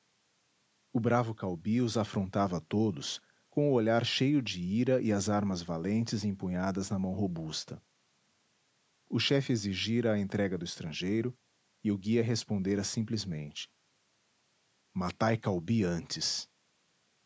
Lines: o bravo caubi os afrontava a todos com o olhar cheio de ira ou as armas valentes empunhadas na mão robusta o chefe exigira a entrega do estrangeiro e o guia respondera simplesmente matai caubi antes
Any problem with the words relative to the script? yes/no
yes